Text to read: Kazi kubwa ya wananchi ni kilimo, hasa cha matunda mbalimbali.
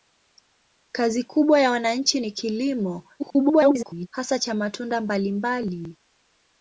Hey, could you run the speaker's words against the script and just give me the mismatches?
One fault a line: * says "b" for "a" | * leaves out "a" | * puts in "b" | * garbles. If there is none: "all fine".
* garbles